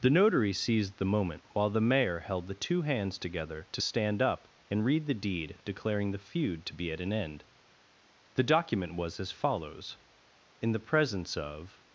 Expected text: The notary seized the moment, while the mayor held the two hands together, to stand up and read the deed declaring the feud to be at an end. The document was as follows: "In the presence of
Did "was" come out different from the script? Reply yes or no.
no